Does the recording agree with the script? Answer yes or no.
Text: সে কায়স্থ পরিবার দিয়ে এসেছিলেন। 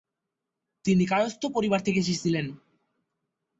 no